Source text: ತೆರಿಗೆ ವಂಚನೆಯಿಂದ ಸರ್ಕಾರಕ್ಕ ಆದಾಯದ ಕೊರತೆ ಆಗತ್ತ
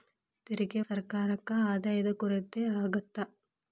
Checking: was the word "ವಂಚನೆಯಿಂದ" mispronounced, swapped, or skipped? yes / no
yes